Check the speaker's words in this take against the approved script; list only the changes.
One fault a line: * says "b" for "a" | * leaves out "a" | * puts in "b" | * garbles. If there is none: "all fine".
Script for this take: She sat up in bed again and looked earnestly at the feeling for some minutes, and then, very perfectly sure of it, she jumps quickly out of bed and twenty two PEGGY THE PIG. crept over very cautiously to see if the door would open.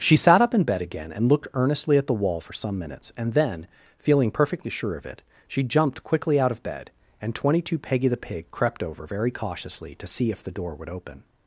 * says "wall" for "feeling"
* says "feeling" for "very"
* says "jumped" for "jumps"